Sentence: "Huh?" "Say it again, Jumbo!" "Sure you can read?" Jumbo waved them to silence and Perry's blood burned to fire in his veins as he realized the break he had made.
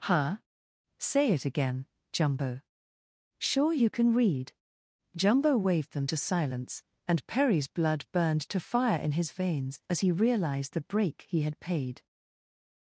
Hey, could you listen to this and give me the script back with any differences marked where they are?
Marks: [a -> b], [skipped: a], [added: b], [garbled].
"Huh?" "Say it again, Jumbo!" "Sure you can read?" Jumbo waved them to silence and Perry's blood burned to fire in his veins as he realized the break he had [made. -> paid]